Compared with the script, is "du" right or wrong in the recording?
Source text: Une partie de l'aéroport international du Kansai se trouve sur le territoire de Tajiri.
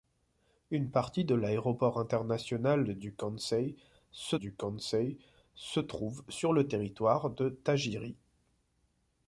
right